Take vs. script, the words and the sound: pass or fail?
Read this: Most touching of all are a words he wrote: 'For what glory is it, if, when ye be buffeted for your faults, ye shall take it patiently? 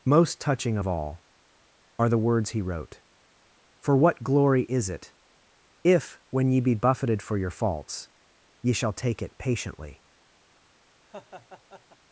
fail